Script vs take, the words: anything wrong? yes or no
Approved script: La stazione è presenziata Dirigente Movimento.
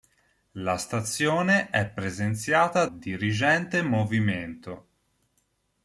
no